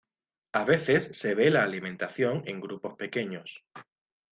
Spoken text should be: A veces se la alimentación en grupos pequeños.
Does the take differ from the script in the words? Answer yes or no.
yes